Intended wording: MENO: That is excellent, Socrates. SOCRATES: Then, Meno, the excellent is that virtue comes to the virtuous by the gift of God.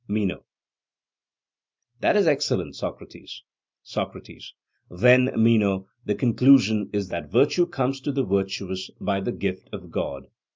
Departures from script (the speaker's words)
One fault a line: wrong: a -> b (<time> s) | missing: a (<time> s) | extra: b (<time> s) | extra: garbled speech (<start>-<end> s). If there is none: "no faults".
wrong: excellent -> conclusion (6.2 s)